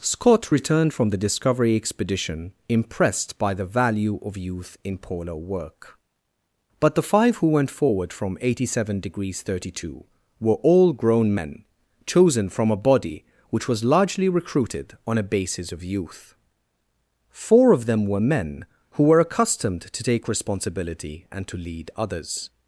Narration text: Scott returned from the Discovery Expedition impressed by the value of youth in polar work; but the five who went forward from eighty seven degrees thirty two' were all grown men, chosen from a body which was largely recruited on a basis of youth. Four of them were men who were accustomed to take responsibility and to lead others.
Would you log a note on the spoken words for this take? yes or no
no